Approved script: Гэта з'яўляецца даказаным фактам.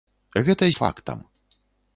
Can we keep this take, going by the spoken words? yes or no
no